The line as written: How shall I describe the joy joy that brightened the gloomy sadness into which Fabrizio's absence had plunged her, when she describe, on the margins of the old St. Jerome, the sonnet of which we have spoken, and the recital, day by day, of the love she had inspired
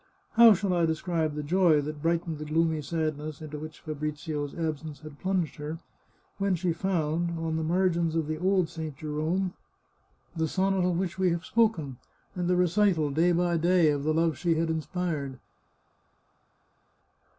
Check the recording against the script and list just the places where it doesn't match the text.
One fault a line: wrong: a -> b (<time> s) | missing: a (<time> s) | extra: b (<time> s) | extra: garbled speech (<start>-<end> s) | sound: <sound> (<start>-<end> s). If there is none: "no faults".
missing: joy (1.8 s)
wrong: describe -> found (6.7 s)